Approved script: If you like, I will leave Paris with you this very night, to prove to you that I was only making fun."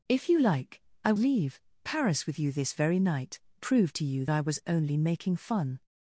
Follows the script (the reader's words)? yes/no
no